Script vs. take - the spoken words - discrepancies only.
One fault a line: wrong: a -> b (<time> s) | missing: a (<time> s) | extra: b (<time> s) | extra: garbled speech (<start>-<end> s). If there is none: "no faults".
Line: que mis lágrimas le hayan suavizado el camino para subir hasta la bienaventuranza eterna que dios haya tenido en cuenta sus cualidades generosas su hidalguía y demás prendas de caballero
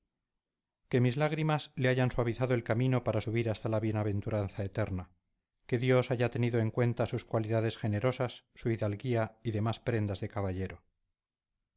no faults